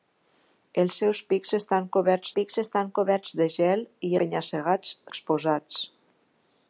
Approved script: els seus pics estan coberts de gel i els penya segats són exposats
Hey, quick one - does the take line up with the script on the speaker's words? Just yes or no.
no